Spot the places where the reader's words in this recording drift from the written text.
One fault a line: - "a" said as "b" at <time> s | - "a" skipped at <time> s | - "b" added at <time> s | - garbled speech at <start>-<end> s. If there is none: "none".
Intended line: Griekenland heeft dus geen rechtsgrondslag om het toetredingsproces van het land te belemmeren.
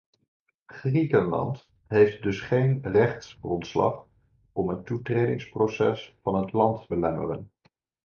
- "te" skipped at 6.9 s